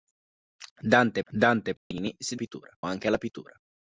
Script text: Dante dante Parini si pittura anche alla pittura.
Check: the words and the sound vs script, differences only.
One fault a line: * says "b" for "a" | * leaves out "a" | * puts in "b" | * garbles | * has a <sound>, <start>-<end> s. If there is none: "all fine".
* has a dropout, 1.8-1.9 s